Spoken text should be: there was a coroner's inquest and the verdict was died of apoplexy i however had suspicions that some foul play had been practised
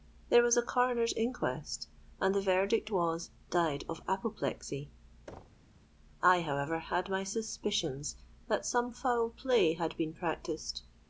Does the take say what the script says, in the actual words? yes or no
no